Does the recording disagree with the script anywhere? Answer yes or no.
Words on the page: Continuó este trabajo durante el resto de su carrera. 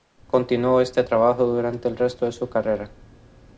no